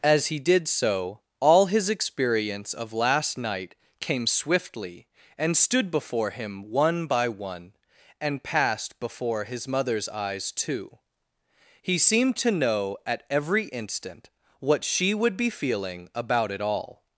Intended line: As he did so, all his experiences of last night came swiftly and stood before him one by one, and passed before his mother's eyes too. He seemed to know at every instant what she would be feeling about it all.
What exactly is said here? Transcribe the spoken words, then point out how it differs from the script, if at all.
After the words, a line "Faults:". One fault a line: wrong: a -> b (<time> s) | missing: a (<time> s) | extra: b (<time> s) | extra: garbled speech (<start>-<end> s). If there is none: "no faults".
As he did so, all his experience of last night came swiftly and stood before him one by one, and passed before his mother's eyes too. He seemed to know at every instant what she would be feeling about it all.
Faults:
wrong: experiences -> experience (1.9 s)